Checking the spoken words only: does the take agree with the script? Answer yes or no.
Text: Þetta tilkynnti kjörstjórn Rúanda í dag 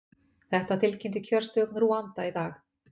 yes